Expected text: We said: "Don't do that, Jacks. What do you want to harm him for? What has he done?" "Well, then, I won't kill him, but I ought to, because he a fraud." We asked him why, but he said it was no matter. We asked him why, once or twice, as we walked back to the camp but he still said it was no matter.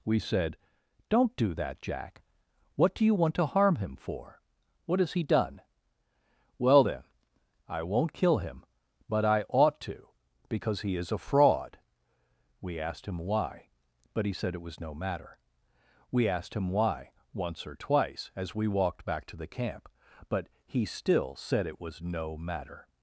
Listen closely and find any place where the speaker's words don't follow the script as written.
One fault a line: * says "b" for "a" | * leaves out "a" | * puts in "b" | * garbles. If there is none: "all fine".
* says "Jack" for "Jacks"
* puts in "is"